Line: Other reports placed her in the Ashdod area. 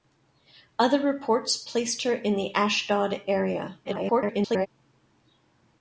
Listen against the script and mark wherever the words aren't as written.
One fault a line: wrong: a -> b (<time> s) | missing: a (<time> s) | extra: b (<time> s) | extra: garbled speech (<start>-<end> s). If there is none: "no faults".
extra: garbled speech (3.8-4.7 s)